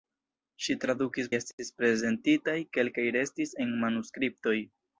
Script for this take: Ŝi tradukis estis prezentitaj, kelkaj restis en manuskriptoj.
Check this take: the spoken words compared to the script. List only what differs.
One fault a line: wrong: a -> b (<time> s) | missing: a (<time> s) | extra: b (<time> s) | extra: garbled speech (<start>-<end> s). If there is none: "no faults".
no faults